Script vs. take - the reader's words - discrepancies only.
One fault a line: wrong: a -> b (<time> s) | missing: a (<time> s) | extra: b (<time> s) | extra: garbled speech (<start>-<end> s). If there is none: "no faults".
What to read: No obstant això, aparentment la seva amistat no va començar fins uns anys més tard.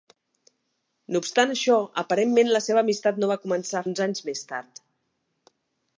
missing: fins (3.8 s)